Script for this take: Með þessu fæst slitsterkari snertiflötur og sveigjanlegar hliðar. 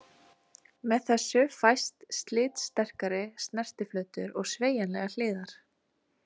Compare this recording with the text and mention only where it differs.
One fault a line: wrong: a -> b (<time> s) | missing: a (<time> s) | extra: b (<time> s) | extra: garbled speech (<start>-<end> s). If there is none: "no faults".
no faults